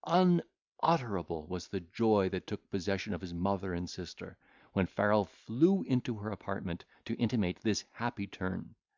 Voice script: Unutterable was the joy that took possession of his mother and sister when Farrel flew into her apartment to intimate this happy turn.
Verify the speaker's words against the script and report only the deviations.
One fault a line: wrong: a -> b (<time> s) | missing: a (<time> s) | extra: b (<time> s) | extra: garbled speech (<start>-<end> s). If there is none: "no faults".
no faults